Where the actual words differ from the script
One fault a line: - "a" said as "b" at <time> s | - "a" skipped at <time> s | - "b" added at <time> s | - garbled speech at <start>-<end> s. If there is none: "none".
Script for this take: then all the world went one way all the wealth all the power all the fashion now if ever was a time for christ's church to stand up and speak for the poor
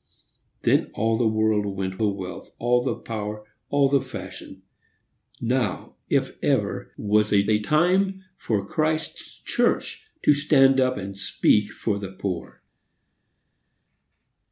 - "one way all" skipped at 2.0 s
- "a" added at 7.5 s